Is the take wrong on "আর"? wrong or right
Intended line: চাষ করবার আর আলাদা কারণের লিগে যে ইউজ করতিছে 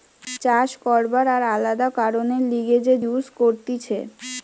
right